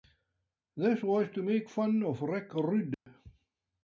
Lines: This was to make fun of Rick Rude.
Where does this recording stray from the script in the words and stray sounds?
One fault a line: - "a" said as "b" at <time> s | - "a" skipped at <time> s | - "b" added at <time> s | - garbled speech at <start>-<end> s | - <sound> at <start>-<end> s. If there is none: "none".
- dropout at 2.9-3.1 s